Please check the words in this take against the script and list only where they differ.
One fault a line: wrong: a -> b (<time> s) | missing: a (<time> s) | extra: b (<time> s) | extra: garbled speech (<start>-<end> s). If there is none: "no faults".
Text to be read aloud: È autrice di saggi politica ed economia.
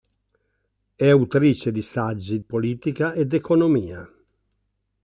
no faults